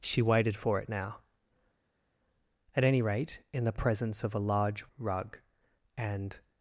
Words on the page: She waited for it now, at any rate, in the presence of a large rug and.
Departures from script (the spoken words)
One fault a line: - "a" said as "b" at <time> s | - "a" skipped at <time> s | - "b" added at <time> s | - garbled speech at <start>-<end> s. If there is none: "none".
none